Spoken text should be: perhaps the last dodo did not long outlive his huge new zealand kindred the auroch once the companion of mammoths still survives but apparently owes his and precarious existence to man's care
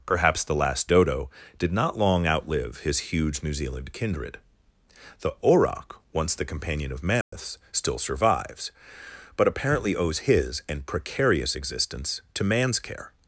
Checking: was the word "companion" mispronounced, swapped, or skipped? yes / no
no